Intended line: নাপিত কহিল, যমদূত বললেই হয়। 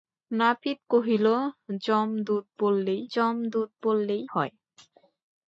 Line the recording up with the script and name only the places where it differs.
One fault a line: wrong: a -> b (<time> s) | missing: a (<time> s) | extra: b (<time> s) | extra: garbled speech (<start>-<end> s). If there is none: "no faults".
extra: যমদূত বললেই (3.1 s)